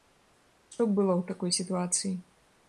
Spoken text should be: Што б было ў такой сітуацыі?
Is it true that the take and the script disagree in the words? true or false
false